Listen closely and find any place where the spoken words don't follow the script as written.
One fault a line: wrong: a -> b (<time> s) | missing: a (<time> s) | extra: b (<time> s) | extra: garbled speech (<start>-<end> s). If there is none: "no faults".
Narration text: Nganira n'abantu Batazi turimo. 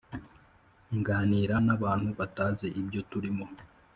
extra: ibyo (2.8 s)